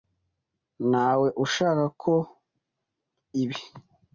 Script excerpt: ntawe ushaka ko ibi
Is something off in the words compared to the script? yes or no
no